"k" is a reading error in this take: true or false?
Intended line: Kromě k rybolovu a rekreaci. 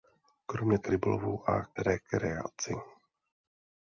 false